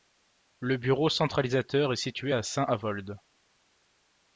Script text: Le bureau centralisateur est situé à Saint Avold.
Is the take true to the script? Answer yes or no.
yes